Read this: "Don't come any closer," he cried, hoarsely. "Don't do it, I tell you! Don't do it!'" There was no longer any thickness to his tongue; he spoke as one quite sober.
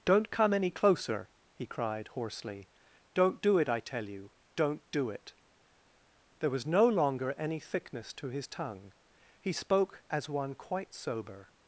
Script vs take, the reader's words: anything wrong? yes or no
no